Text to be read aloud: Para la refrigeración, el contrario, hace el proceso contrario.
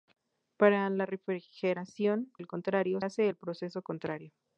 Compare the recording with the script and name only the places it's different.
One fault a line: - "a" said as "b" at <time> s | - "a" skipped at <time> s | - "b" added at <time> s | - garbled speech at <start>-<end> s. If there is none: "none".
none